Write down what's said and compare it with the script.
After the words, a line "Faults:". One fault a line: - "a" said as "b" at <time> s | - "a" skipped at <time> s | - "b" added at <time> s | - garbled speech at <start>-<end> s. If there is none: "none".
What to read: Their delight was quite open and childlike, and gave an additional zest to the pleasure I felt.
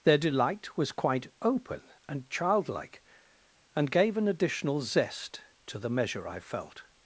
Their delight was quite open and childlike, and gave an additional zest to the measure I felt.
Faults:
- "pleasure" said as "measure" at 5.9 s